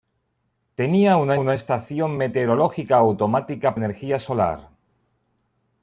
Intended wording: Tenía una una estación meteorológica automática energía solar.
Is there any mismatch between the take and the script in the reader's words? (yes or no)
no